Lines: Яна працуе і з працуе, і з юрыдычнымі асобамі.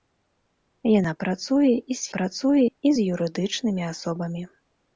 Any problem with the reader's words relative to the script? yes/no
no